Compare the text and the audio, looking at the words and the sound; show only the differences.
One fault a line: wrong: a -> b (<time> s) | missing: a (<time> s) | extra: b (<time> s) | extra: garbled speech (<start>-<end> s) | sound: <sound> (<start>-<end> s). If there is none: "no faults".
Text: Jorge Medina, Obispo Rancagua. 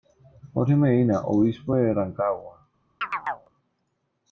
extra: de (1.7 s)
sound: chirp (3.0-3.5 s)